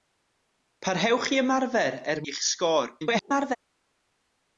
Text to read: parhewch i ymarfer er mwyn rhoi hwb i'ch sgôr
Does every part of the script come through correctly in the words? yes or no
no